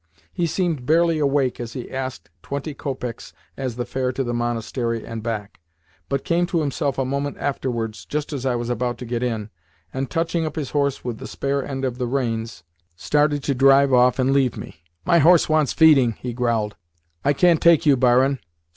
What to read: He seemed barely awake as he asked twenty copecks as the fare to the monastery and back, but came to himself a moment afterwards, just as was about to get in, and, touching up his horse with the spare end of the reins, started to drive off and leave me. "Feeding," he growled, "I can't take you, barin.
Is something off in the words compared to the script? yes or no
yes